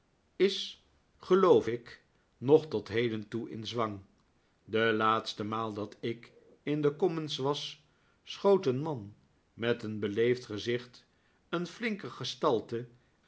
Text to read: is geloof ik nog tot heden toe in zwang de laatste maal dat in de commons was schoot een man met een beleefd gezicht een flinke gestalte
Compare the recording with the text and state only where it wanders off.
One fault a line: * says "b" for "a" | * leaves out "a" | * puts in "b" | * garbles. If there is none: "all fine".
* puts in "ik"